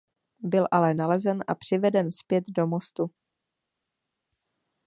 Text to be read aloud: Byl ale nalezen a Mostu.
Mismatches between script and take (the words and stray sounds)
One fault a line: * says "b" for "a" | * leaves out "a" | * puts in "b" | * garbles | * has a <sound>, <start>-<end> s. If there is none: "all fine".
* puts in "přiveden zpět do"